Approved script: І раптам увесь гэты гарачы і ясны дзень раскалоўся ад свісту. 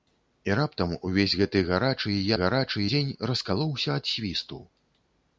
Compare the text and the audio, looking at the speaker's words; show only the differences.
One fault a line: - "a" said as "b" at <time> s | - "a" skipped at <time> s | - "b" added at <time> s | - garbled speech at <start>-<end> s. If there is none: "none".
- "ясны" said as "гарачы" at 2.4 s